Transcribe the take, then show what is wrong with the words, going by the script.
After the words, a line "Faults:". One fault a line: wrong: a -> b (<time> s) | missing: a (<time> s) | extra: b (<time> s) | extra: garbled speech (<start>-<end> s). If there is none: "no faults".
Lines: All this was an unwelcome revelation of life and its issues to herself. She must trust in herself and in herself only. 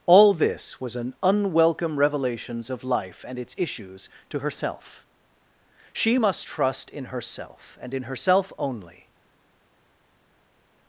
All this was an unwelcome revelations of life and its issues to herself. She must trust in herself and in herself only.
Faults:
wrong: revelation -> revelations (2.0 s)